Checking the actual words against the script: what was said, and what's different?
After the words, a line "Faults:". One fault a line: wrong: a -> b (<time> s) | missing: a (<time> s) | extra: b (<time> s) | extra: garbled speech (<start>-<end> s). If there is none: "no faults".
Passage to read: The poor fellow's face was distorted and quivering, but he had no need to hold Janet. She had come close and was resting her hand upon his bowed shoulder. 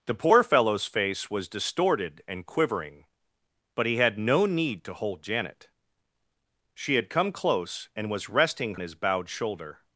The poor fellow's face was distorted and quivering, but he had no need to hold Janet. She had come close and was resting his bowed shoulder.
Faults:
missing: her hand upon (8.8 s)